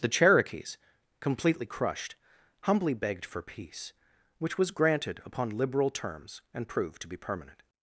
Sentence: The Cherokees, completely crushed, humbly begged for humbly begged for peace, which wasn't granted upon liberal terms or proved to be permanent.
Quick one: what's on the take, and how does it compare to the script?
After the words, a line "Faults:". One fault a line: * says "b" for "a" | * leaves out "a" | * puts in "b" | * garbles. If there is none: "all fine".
The Cherokees, completely crushed, humbly begged for peace, which was granted upon liberal terms and proved to be permanent.
Faults:
* leaves out "humbly begged for"
* says "was" for "wasn't"
* says "and" for "or"